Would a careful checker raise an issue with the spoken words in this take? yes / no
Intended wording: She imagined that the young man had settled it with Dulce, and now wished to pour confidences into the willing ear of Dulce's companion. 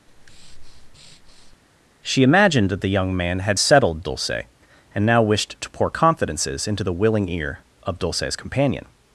yes